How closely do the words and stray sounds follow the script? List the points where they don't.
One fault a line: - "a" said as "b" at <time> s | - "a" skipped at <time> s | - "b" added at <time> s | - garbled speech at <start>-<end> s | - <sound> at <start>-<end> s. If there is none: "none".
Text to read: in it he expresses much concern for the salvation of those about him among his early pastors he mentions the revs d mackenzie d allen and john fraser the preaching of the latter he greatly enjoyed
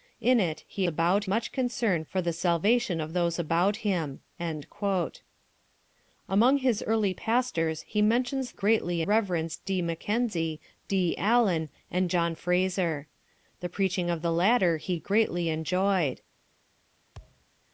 - "expresses" said as "about" at 0.8 s
- "the" said as "greatly" at 8.5 s
- thud at 17.1-17.5 s